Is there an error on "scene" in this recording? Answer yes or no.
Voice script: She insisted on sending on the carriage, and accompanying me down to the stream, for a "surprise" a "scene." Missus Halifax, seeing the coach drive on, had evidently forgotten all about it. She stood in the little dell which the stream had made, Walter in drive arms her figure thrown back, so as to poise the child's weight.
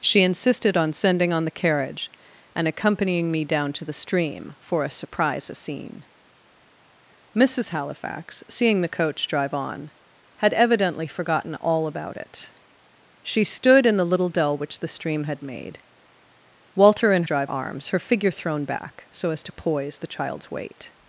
no